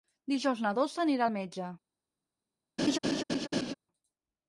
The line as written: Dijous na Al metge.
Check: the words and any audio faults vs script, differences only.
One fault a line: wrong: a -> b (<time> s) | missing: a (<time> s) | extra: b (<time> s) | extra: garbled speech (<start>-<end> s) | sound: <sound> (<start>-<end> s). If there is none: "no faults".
extra: Dolça anirà (0.8 s)
sound: laugh (2.8-3.7 s)